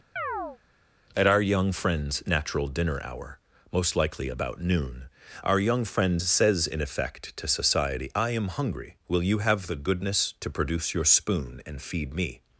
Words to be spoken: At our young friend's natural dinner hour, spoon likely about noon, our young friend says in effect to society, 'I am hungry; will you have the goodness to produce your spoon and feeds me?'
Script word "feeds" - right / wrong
wrong